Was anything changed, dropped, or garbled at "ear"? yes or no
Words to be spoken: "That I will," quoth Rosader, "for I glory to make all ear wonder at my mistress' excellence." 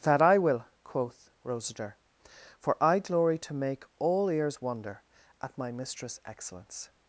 yes